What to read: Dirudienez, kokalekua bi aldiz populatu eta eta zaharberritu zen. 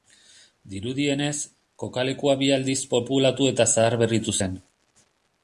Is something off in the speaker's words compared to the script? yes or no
yes